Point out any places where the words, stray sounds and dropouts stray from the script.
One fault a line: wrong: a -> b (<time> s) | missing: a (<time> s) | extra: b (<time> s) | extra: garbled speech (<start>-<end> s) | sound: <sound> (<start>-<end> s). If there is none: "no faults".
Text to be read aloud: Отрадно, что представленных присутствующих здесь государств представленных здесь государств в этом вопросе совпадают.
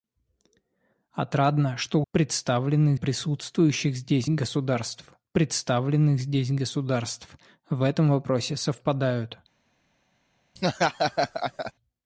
sound: laugh (10.6-11.7 s)